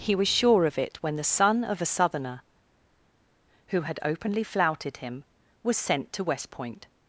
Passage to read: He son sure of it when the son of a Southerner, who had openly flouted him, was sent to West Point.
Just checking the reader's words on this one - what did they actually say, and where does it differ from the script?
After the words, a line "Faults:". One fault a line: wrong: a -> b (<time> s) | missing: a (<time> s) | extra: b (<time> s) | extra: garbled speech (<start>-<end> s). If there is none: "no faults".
He was sure of it when the son of a Southerner, who had openly flouted him, was sent to West Point.
Faults:
wrong: son -> was (0.1 s)